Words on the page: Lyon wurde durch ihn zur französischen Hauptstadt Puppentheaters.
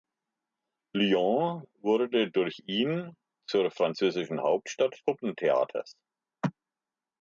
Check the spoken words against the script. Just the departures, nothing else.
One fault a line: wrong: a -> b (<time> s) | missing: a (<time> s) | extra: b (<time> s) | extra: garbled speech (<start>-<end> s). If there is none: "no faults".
no faults